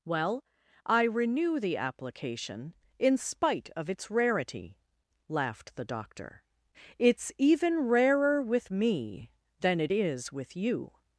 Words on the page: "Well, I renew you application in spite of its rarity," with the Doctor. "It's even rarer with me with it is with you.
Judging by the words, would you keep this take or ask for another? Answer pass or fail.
fail